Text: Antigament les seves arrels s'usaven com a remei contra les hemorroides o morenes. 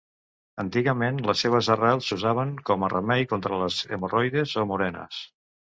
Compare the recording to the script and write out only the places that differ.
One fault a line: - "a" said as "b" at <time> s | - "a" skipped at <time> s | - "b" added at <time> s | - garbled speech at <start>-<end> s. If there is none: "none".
none